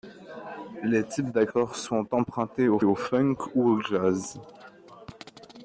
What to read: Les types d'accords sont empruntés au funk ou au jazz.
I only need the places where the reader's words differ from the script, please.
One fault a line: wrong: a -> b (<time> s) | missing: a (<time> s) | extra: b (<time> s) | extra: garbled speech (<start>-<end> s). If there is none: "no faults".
extra: au (2.8 s)